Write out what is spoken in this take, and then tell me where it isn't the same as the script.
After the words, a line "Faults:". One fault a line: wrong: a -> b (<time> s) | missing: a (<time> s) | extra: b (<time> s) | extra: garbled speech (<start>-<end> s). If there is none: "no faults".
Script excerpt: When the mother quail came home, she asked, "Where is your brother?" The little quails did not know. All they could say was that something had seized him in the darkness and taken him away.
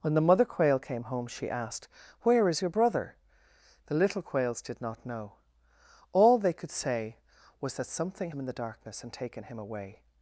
When the mother quail came home, she asked, "Where is your brother?" The little quails did not know. All they could say was that something him in the darkness and taken him away.
Faults:
missing: had seized (8.3 s)